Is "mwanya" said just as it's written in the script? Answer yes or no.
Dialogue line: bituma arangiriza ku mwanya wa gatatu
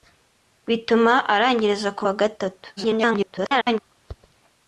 no